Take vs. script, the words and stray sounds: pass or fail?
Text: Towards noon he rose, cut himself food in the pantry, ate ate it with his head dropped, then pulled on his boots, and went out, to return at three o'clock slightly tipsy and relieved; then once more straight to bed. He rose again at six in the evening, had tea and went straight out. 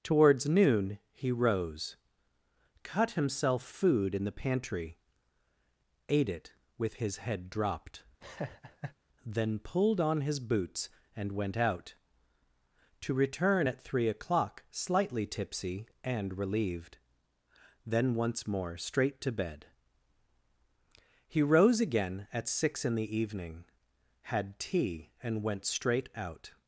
fail